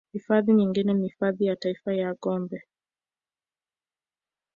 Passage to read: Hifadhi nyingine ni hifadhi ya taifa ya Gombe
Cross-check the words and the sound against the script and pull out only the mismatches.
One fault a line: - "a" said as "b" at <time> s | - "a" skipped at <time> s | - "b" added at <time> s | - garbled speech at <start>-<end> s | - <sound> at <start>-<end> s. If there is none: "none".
none